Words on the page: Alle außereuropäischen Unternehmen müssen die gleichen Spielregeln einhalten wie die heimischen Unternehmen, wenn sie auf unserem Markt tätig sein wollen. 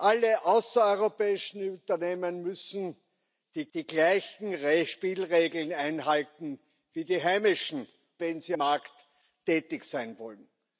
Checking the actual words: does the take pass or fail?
fail